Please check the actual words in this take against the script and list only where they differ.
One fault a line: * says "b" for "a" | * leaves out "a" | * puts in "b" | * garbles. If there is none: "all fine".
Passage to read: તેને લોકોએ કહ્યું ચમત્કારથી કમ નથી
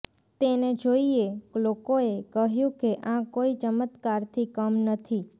* puts in "જોઇએ"
* puts in "કે આ કોઇ"